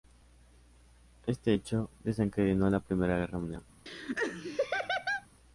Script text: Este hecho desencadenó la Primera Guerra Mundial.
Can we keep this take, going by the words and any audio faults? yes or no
no